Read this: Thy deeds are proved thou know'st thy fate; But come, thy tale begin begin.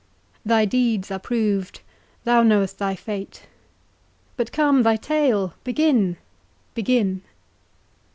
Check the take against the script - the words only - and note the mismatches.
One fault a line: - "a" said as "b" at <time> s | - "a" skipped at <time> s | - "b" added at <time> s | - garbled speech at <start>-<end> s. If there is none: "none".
none